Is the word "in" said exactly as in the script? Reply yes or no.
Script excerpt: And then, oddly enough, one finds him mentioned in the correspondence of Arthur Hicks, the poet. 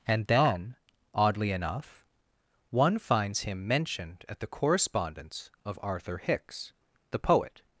no